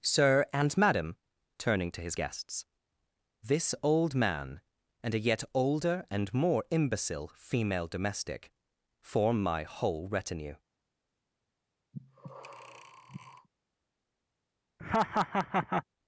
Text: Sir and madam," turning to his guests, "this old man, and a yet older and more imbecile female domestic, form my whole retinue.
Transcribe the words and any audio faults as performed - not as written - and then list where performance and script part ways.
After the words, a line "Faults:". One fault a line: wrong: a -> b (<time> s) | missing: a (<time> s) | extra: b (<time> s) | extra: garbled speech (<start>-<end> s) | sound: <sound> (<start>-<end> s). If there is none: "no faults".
Sir and madam," turning to his guests, "this old man, and a yet older and more imbecile female domestic, form my whole retinue.
Faults:
sound: breath (11.9-13.5 s)
sound: laugh (14.8-15.8 s)